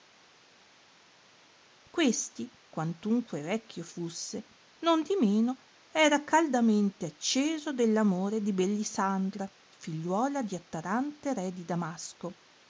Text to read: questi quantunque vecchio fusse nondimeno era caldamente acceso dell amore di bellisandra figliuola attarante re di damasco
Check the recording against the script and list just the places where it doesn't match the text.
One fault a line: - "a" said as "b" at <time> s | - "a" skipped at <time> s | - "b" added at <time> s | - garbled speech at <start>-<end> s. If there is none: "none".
- "di" added at 10.4 s